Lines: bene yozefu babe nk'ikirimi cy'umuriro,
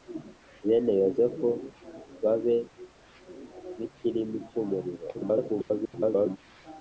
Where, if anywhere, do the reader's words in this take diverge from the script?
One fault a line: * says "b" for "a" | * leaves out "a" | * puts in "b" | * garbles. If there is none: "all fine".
* garbles